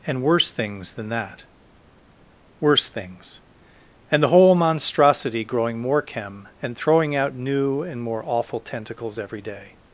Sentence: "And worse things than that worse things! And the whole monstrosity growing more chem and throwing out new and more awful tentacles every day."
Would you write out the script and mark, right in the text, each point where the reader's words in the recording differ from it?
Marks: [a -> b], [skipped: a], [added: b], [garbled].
"And worse things than that worse things! And the whole monstrosity growing more chem and throwing out new and more awful tentacles every day."